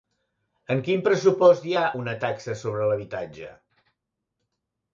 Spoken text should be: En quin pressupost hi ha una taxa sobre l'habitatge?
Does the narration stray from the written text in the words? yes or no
no